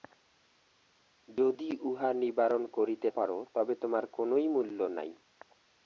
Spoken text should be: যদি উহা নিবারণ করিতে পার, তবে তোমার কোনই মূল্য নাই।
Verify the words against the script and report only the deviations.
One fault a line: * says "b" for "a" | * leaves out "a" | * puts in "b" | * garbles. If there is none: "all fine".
all fine